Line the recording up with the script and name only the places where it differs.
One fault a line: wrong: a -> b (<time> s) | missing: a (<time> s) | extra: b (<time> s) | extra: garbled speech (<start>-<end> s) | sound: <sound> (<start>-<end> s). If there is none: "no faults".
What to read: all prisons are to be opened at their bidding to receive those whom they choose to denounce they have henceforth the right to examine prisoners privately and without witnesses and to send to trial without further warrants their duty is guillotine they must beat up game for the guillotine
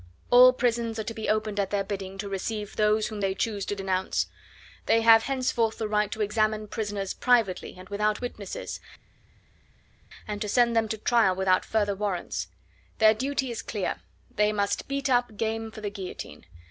extra: them (10.8 s)
wrong: guillotine -> clear (13.6 s)